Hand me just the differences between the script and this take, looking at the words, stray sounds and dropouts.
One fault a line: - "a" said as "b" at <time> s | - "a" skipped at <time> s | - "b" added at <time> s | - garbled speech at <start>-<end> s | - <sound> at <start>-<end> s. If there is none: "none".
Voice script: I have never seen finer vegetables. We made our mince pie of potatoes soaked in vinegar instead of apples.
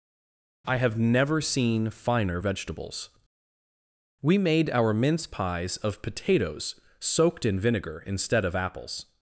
- "pie" said as "pies" at 5.3 s